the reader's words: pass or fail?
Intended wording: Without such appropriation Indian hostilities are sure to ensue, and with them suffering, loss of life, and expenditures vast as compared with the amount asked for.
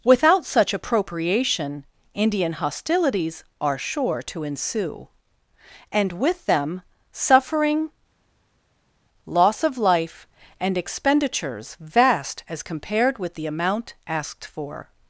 pass